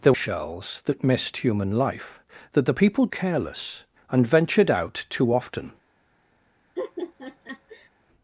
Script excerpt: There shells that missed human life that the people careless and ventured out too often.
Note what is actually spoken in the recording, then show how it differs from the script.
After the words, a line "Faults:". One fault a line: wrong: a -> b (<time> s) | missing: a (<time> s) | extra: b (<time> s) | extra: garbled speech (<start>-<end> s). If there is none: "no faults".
There shells that missed human life that the people careless and ventured out too often.
Faults:
no faults